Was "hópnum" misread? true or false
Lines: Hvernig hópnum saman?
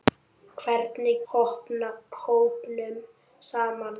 false